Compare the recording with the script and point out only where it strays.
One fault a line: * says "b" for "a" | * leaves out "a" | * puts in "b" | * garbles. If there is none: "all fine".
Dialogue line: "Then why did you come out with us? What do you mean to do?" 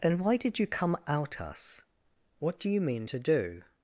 * leaves out "with"